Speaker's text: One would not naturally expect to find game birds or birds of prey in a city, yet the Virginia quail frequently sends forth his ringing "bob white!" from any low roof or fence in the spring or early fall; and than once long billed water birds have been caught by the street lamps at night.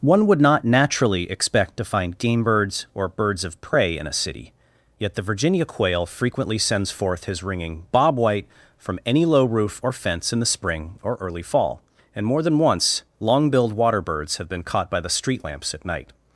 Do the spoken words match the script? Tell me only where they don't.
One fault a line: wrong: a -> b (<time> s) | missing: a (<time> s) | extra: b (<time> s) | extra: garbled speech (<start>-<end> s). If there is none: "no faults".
extra: more (12.2 s)